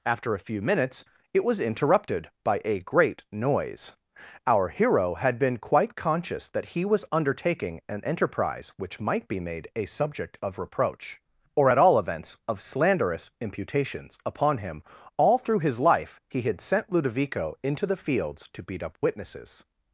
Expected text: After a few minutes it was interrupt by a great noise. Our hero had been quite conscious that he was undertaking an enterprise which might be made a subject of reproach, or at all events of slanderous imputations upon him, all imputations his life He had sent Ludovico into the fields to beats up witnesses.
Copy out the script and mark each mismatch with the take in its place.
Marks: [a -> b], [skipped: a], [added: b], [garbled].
After a few minutes it was [interrupt -> interrupted] by a great noise. Our hero had been quite conscious that he was undertaking an enterprise which might be made a subject of reproach, or at all events of slanderous imputations upon him, all [imputations -> through] his life He had sent Ludovico into the fields to [beats -> beat] up witnesses.